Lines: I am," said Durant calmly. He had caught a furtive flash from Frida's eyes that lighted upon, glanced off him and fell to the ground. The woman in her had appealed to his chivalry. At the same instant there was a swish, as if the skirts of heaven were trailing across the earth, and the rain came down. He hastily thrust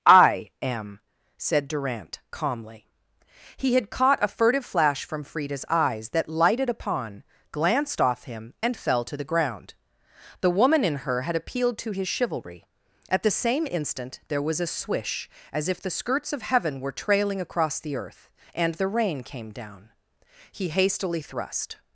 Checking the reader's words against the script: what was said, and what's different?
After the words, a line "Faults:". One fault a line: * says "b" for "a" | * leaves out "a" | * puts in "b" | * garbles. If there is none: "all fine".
I am," said Durant calmly. He had caught a furtive flash from Frida's eyes that lighted upon, glanced off him and fell to the ground. The woman in her had appealed to his chivalry. At the same instant there was a swish, as if the skirts of heaven were trailing across the earth, and the rain came down. He hastily thrust
Faults:
all fine